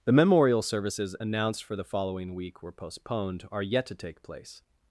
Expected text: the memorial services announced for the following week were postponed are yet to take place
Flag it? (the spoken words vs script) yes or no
no